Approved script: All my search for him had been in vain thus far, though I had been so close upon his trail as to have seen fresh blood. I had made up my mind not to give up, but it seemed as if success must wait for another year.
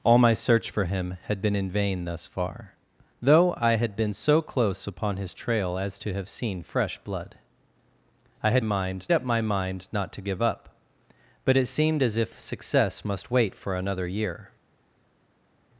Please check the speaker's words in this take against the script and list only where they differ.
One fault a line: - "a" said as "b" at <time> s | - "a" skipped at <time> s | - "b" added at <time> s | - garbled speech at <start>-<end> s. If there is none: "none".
- "made" said as "mind" at 8.6 s